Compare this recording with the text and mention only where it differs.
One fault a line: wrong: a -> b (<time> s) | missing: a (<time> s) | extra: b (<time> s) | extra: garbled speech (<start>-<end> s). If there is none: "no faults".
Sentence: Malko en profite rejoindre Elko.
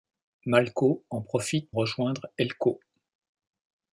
no faults